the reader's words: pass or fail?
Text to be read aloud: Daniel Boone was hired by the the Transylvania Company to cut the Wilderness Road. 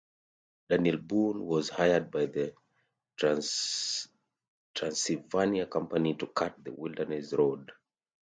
fail